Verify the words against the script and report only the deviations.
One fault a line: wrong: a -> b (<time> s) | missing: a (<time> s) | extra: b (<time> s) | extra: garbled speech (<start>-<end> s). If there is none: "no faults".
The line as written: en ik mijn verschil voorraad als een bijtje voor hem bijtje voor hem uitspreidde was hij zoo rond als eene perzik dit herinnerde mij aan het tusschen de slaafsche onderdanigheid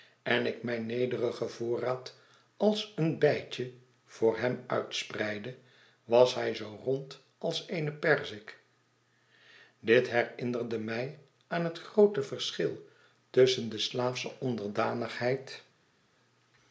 wrong: verschil -> nederigen (0.8 s)
missing: bijtje voor hem (4.6 s)
extra: groote verschil (11.8 s)